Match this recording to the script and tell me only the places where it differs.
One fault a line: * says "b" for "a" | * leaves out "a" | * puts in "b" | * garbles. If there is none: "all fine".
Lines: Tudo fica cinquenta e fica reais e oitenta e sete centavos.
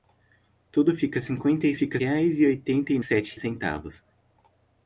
all fine